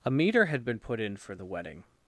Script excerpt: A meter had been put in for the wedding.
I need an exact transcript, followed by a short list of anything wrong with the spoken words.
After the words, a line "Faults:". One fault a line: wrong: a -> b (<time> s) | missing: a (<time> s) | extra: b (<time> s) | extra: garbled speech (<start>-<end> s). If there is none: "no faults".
A meter had been put in for the wedding.
Faults:
no faults